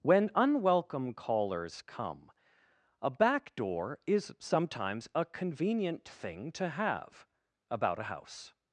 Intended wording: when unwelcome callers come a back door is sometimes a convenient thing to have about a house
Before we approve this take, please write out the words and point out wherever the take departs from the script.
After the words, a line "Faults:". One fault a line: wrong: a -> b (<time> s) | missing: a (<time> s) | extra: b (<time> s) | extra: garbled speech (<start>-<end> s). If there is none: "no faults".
when unwelcome callers come a back door is sometimes a convenient thing to have about a house
Faults:
no faults